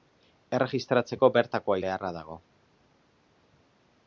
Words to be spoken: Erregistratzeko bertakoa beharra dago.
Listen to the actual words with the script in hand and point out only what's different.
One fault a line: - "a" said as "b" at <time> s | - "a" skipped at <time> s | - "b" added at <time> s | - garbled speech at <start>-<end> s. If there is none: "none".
none